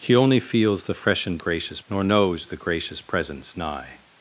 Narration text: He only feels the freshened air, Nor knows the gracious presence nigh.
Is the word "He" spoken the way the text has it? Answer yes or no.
yes